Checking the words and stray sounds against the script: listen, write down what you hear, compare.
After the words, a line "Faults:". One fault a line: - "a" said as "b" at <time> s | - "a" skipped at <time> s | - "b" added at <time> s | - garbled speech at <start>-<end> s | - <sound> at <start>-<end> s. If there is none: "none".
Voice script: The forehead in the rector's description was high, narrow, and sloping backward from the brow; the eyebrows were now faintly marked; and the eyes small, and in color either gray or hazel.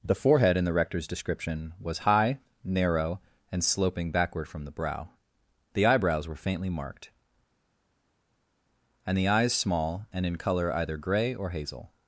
The forehead in the rector's description was high, narrow, and sloping backward from the brow; the eyebrows were faintly marked; and the eyes small, and in color either gray or hazel.
Faults:
- "now" skipped at 6.3 s